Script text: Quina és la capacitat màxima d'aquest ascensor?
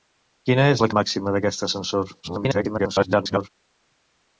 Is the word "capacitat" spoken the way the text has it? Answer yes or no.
no